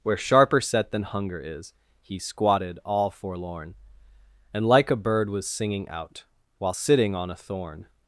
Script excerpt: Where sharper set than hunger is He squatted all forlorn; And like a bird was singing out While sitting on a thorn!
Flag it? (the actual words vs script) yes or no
no